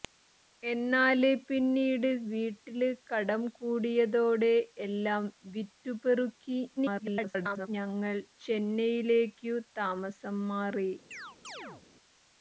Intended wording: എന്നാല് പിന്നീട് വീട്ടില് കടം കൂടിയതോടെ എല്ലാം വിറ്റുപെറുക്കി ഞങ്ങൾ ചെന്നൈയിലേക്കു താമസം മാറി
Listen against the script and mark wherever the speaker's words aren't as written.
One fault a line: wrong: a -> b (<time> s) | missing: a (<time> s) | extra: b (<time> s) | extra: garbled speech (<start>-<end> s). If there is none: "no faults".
extra: garbled speech (6.8-7.7 s)